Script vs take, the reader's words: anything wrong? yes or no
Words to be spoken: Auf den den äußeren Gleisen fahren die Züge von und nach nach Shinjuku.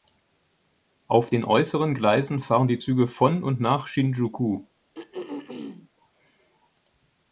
yes